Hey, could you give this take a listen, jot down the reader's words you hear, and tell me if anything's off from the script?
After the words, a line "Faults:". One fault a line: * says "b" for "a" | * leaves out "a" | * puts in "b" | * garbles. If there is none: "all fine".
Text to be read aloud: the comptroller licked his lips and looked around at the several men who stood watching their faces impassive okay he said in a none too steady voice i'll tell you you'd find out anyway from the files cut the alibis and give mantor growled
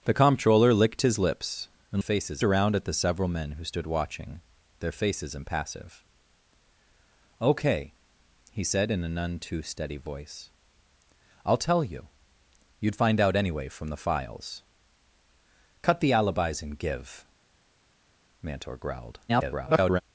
the comptroller licked his lips and faces around at the several men who stood watching their faces impassive okay he said in a none too steady voice i'll tell you you'd find out anyway from the files cut the alibis and give mantor growled [garbled]
Faults:
* says "faces" for "looked"
* garbles